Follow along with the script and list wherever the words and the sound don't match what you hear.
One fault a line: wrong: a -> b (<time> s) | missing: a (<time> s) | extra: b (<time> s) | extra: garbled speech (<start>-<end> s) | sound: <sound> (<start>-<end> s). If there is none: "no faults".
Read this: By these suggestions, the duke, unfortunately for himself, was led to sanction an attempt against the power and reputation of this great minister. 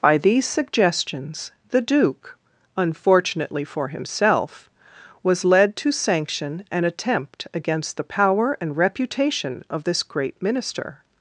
no faults